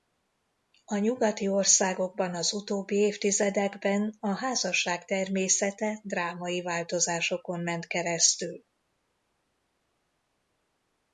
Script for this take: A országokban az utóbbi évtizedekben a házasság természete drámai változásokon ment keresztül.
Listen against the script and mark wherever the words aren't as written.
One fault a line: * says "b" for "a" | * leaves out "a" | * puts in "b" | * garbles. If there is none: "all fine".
* puts in "nyugati"